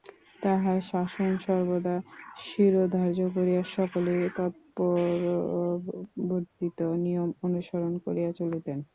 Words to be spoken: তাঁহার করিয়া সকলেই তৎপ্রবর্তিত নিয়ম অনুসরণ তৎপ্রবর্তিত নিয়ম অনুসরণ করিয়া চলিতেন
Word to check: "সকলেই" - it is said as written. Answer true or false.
false